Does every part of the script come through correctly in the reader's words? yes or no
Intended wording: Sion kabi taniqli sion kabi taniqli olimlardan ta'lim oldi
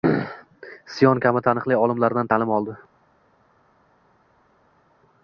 no